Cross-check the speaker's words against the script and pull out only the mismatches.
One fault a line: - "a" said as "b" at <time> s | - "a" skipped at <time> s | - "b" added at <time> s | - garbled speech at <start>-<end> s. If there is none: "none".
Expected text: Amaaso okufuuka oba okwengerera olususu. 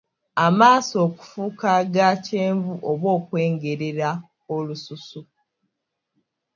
- "aga kyenvu" added at 1.8 s